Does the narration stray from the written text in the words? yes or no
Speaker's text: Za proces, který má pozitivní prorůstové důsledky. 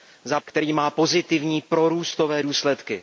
yes